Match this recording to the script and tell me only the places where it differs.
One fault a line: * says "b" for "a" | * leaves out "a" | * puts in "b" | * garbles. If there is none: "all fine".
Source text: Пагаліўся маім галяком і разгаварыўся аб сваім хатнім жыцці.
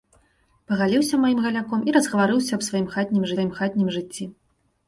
* puts in "сваім хатнім"